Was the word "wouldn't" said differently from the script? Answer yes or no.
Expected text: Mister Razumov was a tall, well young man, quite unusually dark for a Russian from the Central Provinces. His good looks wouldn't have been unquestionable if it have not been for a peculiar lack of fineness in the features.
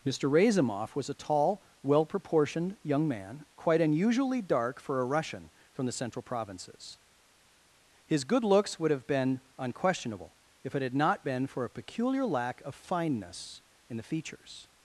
yes